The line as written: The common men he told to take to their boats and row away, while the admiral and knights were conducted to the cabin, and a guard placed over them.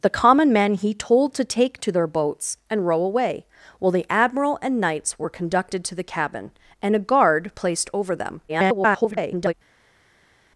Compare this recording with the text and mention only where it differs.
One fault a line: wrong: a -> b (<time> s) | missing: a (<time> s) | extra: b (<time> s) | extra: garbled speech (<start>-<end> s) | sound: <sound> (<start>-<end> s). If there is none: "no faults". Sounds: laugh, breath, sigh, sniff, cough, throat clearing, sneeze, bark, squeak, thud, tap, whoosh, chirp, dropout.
extra: garbled speech (8.5-9.5 s)